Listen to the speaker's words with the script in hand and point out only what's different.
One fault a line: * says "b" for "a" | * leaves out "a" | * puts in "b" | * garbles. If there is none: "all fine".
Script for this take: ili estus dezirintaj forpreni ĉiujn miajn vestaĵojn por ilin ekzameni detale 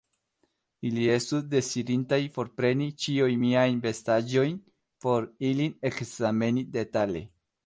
all fine